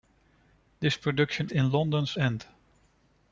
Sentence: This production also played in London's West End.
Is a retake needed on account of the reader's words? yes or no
yes